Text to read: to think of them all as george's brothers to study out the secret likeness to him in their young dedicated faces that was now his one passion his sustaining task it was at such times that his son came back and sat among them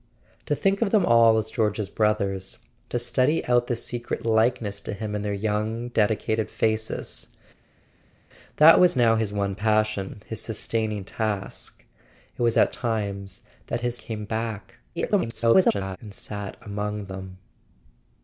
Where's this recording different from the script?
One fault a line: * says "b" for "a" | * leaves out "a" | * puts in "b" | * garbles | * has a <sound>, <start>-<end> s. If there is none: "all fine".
* leaves out "such"
* leaves out "son"
* garbles